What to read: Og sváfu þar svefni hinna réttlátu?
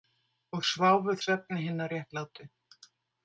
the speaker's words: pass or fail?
fail